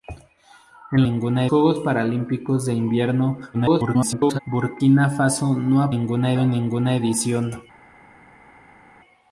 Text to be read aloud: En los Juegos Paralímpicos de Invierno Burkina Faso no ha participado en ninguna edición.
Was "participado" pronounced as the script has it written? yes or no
no